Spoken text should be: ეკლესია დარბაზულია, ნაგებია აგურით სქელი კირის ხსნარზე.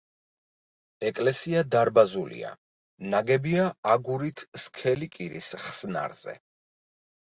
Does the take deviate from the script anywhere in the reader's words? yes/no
no